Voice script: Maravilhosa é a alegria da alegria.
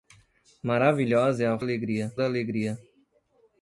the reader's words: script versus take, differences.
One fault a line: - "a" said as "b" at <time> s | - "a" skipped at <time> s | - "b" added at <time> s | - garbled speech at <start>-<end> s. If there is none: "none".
none